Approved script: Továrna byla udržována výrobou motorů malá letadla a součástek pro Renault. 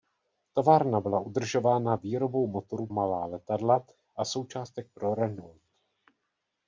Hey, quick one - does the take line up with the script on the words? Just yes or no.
yes